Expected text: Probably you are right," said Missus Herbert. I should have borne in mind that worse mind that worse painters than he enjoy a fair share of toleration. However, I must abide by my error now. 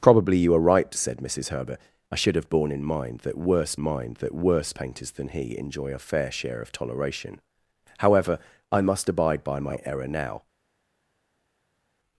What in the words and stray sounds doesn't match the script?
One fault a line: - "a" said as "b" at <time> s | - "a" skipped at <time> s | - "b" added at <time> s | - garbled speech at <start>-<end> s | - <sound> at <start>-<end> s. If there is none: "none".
none